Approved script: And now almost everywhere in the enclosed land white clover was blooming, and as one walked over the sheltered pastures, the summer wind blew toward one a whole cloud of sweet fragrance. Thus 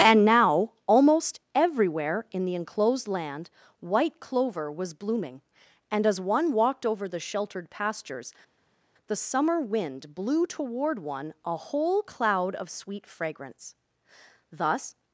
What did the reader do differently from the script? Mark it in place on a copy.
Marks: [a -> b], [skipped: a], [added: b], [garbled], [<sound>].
And now almost everywhere in the enclosed land white clover was blooming, and as one walked over the sheltered pastures, the summer wind blew toward one a whole cloud of sweet fragrance. Thus